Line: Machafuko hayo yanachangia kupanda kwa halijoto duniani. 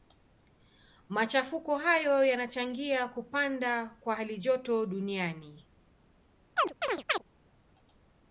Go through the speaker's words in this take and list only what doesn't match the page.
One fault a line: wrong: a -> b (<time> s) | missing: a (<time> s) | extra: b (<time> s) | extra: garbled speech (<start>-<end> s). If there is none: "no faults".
no faults